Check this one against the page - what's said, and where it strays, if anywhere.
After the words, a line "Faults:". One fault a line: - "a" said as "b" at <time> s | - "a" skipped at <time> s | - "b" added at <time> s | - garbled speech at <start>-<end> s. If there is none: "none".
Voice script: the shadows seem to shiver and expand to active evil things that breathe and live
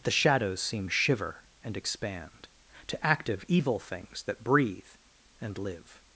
the shadows seem shiver and expand to active evil things that breathe and live
Faults:
- "to" skipped at 0.9 s